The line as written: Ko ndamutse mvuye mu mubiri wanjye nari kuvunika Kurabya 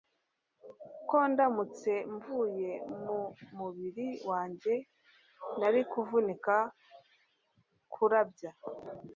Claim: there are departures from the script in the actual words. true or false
false